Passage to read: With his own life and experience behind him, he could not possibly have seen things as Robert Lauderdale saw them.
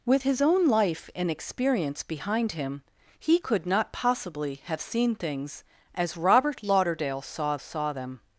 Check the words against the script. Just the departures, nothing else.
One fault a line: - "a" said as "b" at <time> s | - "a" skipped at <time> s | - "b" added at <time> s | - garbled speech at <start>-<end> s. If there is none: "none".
- "saw" added at 7.6 s